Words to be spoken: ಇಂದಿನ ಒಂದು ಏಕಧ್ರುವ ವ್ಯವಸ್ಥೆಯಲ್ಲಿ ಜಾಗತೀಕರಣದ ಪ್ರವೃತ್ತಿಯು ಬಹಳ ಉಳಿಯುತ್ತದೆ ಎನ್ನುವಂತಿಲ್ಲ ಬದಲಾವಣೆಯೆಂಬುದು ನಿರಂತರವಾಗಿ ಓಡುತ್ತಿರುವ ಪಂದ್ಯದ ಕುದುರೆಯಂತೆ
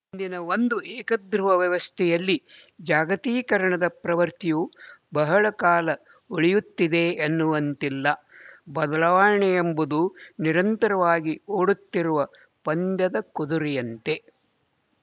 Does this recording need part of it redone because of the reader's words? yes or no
yes